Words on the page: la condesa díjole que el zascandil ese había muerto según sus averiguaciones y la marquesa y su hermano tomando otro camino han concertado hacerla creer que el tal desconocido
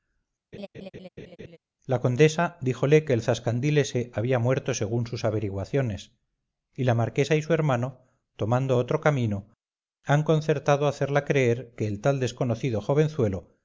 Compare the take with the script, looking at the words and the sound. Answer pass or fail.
fail